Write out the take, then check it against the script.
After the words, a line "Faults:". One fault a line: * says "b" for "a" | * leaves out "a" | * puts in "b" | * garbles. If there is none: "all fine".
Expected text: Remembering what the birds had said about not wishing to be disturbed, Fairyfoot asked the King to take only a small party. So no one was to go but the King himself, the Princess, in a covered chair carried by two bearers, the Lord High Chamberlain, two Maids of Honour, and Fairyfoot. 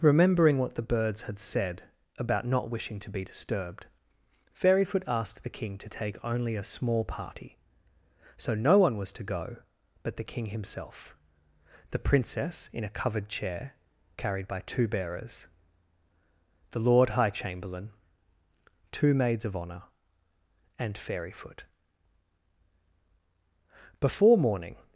Remembering what the birds had said about not wishing to be disturbed, Fairyfoot asked the King to take only a small party. So no one was to go but the King himself, the Princess, in a covered chair carried by two bearers, the Lord High Chamberlain, two Maids of Honour, and Fairyfoot. Before morning
Faults:
* puts in "Before morning"